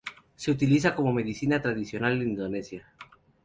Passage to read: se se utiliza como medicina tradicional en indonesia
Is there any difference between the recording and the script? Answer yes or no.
yes